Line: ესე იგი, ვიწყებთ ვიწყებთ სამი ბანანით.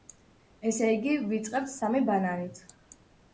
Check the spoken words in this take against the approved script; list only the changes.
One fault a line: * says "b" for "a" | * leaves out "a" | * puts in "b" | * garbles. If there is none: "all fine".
* leaves out "ვიწყებთ"